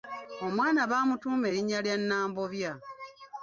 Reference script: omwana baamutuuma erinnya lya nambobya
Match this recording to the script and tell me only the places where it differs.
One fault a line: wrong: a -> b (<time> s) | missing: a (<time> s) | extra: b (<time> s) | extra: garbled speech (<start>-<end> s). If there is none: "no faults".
no faults